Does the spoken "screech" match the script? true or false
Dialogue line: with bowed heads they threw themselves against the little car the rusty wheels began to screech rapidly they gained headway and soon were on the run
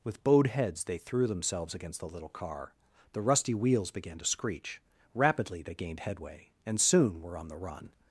true